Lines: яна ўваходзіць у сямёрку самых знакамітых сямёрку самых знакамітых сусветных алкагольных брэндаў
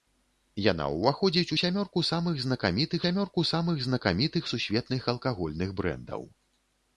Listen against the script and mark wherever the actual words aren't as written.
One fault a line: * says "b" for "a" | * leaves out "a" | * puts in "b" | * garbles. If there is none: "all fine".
all fine